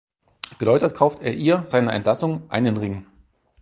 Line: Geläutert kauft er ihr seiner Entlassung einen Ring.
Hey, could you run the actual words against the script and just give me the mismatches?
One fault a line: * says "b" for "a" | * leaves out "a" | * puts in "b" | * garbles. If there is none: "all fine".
all fine